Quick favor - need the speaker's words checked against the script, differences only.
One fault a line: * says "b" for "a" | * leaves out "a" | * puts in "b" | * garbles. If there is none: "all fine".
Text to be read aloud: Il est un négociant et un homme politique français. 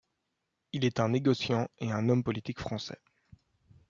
all fine